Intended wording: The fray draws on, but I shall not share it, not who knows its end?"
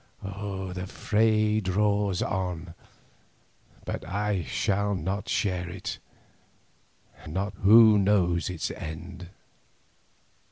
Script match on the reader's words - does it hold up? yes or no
yes